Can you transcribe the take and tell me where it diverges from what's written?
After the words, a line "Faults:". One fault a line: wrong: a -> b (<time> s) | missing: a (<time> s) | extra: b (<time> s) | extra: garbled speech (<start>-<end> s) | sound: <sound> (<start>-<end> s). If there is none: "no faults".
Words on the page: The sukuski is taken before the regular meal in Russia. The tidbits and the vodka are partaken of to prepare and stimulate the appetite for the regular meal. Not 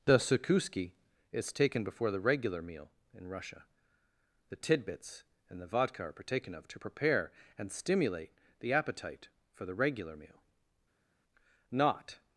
The sukuski is taken before the regular meal in Russia. The tidbits and the vodka are partaken of to prepare and stimulate the appetite for the regular meal. Not
Faults:
no faults